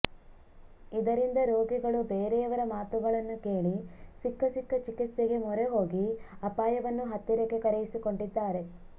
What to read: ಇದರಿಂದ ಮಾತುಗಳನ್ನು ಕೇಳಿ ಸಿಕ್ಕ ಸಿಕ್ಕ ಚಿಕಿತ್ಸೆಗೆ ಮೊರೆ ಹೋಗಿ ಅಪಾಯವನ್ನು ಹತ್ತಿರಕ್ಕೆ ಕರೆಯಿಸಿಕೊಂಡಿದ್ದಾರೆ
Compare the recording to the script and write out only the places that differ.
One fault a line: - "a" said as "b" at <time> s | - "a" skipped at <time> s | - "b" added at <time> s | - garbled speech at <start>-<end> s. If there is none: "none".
- "ರೋಗಿಗಳು ಬೇರೆಯವರ" added at 1.5 s